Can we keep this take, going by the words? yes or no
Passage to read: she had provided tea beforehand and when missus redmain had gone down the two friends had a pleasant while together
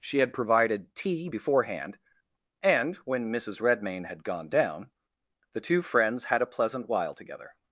yes